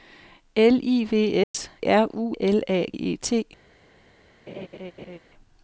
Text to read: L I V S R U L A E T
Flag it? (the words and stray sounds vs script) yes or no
yes